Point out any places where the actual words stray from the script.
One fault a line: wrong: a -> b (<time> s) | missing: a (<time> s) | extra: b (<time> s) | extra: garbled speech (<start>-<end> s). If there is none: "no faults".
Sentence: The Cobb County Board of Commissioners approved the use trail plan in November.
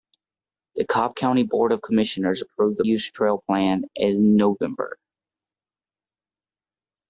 no faults